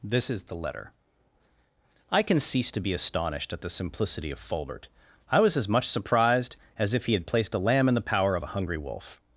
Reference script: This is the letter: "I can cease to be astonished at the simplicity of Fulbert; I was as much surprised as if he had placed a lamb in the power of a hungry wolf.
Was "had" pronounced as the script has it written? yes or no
yes